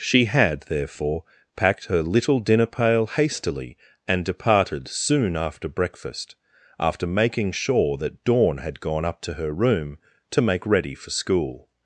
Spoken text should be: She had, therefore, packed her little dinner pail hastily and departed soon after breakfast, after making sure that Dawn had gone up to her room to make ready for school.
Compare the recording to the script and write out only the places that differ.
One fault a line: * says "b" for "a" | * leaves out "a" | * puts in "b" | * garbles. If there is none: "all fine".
all fine